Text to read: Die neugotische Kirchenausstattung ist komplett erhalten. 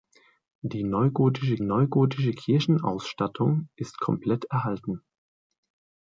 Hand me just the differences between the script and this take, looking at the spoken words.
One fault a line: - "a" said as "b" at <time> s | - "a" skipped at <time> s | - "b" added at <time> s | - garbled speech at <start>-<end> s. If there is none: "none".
- "neugotische" added at 1.6 s